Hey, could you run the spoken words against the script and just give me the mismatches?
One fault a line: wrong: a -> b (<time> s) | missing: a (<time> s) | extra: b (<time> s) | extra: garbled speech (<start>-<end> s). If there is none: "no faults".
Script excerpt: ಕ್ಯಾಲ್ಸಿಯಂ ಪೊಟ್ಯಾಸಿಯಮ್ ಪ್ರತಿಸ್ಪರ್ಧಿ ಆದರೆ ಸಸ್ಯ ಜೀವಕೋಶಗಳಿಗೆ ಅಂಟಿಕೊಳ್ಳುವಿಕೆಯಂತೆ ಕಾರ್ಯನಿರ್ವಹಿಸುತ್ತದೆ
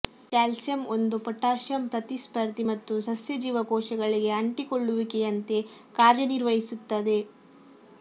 extra: ಒಂದು (0.9 s)
wrong: ಆದರೆ -> ಮತ್ತು (2.7 s)